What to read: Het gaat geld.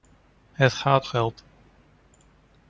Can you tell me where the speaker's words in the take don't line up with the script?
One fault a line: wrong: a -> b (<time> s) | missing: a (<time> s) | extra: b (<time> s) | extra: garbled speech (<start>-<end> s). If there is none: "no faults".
no faults